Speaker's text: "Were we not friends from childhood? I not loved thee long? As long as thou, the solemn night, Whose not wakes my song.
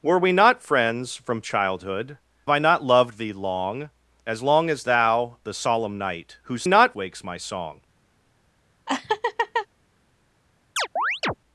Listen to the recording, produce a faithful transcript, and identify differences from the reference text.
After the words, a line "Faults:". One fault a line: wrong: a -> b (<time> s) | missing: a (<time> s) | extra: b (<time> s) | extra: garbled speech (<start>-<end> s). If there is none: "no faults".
"Were we not friends from childhood? I not loved thee long? As long as thou, the solemn night, Whose not wakes my song.
Faults:
no faults